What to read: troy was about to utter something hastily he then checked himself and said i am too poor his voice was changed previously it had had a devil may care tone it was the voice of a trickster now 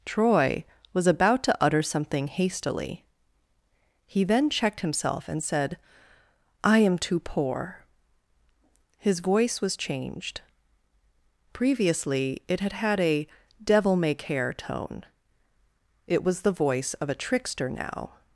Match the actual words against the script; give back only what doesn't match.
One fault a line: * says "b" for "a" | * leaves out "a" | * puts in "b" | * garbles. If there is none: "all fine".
all fine